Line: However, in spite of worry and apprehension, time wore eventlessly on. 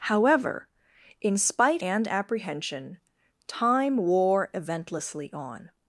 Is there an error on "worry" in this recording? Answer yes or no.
yes